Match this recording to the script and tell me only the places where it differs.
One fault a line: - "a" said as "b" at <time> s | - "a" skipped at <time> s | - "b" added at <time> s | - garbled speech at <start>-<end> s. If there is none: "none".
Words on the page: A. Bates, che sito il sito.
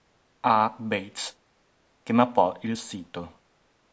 - "sito" said as "mappò" at 2.1 s